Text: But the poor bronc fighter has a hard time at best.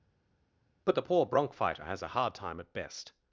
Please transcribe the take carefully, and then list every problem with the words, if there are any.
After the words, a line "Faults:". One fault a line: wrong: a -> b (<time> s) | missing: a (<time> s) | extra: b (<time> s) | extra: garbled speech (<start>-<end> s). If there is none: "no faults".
But the poor bronc fighter has a hard time at best.
Faults:
no faults